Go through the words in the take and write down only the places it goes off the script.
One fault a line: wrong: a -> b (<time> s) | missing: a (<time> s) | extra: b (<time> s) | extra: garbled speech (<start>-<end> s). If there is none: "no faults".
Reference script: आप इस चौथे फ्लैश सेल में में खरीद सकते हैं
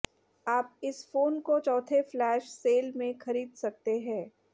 extra: फोन को (1.1 s)
missing: में (3.2 s)